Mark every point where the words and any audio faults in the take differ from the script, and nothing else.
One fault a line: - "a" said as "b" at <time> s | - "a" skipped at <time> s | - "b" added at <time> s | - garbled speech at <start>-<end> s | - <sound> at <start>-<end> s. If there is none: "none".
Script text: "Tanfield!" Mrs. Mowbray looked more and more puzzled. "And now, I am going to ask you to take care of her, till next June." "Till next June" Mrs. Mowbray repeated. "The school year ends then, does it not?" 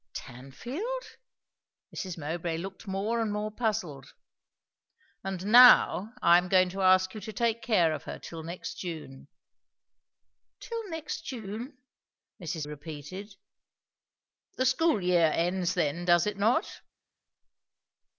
- "Mowbray" skipped at 12.7 s